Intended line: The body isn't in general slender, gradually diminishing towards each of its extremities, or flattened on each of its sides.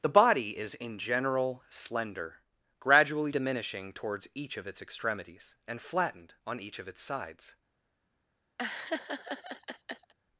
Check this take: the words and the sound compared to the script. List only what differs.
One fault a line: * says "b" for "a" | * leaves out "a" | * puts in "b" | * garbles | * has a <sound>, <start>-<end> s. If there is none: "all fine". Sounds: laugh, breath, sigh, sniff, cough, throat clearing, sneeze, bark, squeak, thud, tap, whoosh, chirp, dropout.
* says "is" for "isn't"
* says "and" for "or"
* has a laugh, 8.6-10.1 s